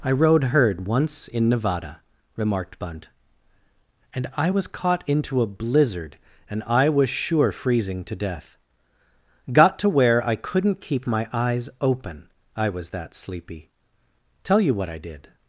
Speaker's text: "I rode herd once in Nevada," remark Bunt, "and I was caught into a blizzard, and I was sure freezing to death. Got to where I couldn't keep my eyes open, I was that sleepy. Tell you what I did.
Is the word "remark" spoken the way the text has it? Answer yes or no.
no